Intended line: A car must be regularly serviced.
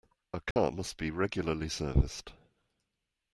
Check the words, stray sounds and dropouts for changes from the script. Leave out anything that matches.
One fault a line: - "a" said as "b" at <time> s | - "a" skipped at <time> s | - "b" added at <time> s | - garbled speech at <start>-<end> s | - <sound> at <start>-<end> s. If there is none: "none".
- dropout at 0.5-0.6 s